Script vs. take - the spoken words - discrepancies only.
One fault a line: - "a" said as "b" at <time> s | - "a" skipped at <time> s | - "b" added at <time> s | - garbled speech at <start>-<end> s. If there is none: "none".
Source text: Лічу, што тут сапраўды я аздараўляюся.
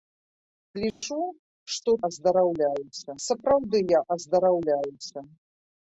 - "тут" said as "аздараўляюся" at 2.1 s